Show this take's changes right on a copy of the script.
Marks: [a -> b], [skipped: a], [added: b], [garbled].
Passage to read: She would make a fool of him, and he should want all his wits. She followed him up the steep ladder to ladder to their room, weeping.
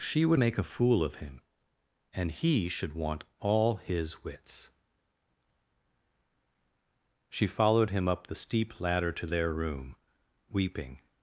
She would make a fool of him, and he should want all his wits. She followed him up the steep ladder to [skipped: ladder to] their room, weeping.